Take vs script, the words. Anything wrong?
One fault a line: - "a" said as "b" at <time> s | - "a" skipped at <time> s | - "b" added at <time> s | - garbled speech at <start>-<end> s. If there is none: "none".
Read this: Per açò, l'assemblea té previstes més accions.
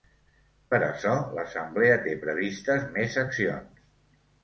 none